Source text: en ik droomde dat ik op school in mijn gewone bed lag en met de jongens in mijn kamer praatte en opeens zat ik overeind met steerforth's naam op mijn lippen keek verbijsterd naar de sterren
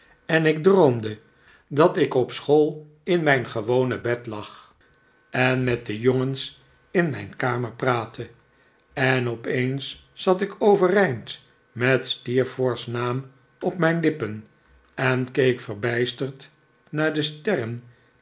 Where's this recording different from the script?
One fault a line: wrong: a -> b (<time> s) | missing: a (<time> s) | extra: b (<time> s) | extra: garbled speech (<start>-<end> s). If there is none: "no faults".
extra: en (14.9 s)